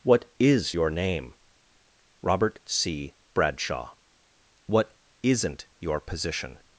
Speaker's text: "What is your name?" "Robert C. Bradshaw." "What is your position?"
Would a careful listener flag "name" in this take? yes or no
no